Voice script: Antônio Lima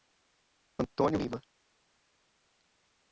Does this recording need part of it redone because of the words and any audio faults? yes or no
no